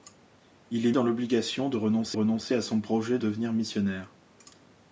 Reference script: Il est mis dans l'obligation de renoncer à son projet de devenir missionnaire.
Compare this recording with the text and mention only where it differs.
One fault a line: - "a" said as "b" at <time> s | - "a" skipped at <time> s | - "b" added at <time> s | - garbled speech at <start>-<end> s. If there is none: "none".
- "mis" skipped at 0.9 s
- "renoncer" added at 2.1 s
- "de" skipped at 3.2 s